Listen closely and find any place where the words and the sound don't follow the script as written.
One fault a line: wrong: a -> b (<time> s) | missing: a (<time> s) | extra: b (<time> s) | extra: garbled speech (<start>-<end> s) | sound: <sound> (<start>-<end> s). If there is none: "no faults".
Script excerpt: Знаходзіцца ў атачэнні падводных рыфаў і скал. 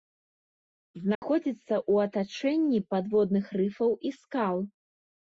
sound: dropout (1.1-1.2 s)